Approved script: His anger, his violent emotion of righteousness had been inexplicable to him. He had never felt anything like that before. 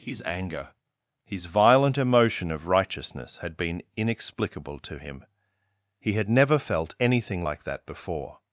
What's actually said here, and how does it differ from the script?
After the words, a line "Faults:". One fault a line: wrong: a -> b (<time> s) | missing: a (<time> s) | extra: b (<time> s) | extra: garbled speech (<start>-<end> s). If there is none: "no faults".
His anger, his violent emotion of righteousness had been inexplicable to him. He had never felt anything like that before.
Faults:
no faults